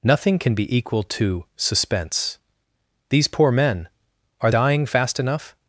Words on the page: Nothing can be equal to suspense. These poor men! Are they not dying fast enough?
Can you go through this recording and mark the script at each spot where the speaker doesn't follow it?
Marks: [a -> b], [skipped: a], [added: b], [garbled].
Nothing can be equal to suspense. These poor men! Are [skipped: they not] dying fast enough?